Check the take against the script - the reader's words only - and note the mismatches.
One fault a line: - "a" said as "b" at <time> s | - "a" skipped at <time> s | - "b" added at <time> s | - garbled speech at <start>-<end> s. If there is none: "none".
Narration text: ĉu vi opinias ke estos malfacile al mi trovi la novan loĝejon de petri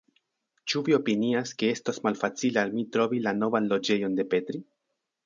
none